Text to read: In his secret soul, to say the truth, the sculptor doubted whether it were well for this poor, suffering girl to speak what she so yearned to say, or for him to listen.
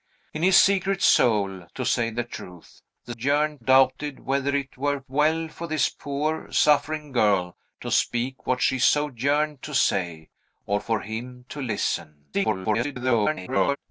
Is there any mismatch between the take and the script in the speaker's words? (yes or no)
yes